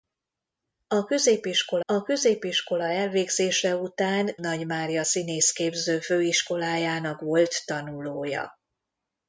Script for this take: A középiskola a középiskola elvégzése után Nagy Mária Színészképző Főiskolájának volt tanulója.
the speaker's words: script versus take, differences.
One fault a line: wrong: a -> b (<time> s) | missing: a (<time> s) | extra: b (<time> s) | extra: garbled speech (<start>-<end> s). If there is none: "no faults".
no faults